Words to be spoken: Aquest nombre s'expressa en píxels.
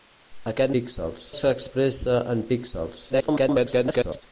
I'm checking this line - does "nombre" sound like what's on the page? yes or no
no